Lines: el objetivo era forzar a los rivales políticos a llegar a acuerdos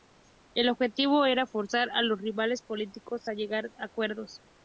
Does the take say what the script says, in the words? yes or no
yes